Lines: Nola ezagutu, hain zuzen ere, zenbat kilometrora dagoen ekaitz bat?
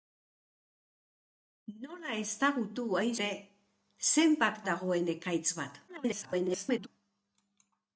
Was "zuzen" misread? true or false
true